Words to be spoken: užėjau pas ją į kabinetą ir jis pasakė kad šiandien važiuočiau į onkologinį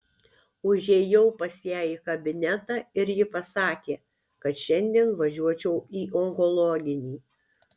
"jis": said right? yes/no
no